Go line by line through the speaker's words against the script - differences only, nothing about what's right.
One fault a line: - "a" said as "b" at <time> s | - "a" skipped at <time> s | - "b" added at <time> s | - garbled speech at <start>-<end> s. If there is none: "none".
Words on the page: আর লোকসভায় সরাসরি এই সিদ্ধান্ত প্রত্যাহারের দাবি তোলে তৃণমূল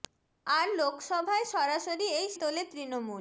- "সিদ্ধান্ত প্রত্যাহারের দাবি" skipped at 2.3 s